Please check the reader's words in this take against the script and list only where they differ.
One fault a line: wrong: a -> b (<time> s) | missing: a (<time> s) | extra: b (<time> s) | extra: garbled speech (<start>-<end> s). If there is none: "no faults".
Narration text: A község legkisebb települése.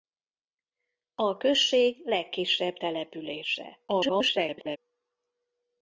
extra: garbled speech (3.9-4.8 s)